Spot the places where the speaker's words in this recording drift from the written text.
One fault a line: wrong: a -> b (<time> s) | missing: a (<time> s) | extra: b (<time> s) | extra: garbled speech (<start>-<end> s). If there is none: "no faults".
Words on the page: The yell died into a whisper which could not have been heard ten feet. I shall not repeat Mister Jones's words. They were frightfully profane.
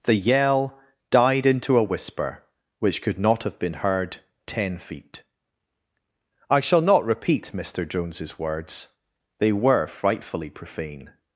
no faults